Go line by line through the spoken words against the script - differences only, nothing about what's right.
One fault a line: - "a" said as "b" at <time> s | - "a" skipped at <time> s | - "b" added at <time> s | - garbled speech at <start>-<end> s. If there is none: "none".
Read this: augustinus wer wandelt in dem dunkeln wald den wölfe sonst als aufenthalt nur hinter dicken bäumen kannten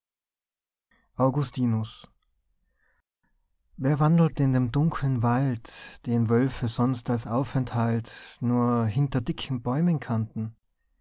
none